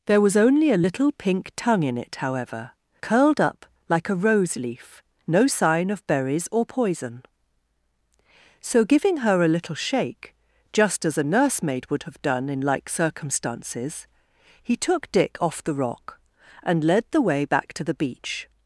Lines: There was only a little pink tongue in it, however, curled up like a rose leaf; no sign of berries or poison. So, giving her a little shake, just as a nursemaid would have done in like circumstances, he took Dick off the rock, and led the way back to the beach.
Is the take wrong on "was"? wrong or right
right